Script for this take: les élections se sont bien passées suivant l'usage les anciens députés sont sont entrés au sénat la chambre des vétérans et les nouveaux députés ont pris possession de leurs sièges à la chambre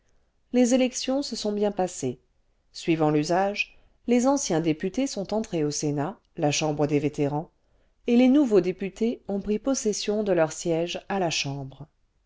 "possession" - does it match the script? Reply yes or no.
yes